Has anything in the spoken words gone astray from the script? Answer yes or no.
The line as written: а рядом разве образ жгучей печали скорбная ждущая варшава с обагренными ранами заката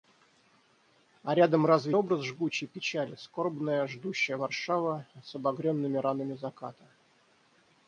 no